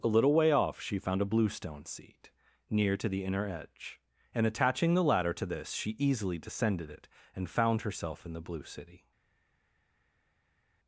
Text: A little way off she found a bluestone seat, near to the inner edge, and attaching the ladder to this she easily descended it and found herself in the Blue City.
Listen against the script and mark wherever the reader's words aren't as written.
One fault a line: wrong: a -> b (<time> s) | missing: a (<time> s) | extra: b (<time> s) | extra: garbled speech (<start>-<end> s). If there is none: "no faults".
no faults